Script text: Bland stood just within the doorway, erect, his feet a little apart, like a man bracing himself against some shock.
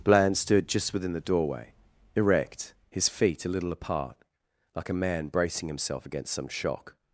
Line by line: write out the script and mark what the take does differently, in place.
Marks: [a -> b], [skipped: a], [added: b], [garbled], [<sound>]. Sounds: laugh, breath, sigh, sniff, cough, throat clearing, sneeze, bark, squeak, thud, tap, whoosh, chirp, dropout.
Bland stood just within the doorway, erect, his feet a little apart, like a man bracing himself against some shock.